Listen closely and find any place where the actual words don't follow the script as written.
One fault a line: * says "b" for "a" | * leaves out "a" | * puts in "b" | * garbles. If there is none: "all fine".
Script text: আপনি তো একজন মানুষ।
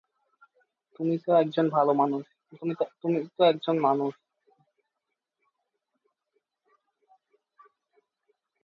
* says "তুমি" for "আপনি"